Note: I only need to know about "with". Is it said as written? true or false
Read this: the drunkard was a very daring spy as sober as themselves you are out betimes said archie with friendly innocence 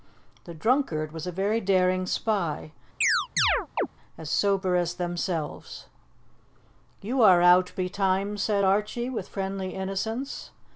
true